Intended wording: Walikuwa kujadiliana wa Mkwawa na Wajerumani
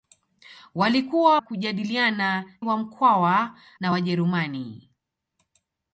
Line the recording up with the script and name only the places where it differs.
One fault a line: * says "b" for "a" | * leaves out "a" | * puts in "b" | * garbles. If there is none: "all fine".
all fine